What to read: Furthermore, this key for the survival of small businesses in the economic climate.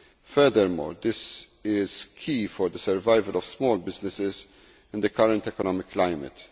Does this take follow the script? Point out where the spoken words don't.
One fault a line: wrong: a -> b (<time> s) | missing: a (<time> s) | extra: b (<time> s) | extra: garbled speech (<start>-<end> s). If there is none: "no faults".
extra: is (1.6 s)
extra: current (5.1 s)